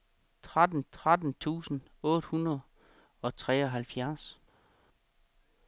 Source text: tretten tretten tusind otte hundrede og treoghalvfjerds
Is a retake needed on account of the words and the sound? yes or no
no